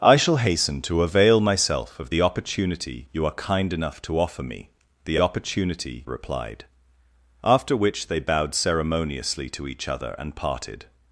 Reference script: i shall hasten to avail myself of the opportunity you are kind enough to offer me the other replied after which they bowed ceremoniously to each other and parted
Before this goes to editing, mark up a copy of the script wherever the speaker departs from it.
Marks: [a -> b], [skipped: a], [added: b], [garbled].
i shall hasten to avail myself of the opportunity you are kind enough to offer me the [other -> opportunity] replied after which they bowed ceremoniously to each other and parted